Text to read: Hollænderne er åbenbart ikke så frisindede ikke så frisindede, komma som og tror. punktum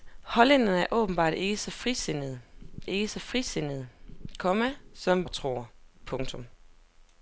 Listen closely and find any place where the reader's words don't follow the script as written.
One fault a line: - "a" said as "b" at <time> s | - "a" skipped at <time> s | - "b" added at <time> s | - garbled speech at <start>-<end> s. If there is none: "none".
none